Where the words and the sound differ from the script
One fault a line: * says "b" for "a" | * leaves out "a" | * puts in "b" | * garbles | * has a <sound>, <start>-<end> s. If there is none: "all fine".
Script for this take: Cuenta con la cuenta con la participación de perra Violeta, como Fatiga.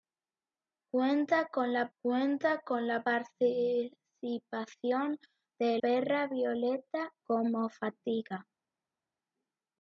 all fine